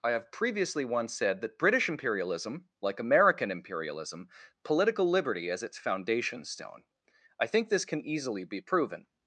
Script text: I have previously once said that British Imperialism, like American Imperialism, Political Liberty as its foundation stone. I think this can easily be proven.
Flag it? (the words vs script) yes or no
no